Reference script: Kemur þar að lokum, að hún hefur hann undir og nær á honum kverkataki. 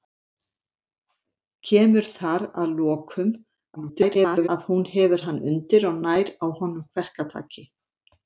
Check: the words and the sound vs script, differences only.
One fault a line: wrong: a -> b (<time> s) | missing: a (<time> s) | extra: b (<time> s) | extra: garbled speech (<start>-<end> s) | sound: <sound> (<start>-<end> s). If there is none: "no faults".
extra: garbled speech (3.8-4.5 s)